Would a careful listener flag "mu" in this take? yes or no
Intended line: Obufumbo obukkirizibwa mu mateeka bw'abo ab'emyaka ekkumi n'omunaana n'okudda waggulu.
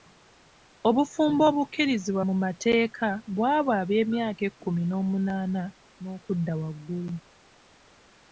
no